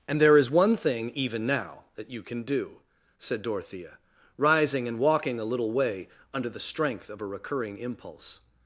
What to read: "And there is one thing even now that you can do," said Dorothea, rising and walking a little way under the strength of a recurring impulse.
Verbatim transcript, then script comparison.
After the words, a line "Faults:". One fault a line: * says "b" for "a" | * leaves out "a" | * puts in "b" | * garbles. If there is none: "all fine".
"And there is one thing even now that you can do," said Dorothea, rising and walking a little way under the strength of a recurring impulse.
Faults:
all fine